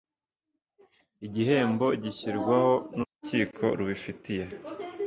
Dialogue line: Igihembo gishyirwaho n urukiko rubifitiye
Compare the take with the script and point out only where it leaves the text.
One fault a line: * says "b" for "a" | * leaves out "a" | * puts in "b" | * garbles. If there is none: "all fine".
all fine